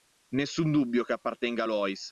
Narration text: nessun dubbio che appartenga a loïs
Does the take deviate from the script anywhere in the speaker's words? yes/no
no